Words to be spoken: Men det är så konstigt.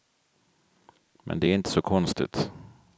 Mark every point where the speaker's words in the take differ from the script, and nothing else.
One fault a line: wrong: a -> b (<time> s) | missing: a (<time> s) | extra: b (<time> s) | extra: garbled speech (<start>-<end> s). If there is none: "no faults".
extra: inte (1.5 s)